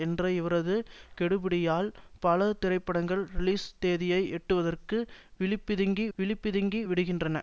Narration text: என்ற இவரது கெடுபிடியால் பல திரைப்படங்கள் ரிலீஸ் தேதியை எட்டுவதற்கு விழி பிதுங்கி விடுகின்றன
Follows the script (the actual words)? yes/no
no